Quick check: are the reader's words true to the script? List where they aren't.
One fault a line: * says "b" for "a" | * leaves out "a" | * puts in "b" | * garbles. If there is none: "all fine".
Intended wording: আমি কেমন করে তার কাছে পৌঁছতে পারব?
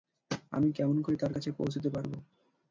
all fine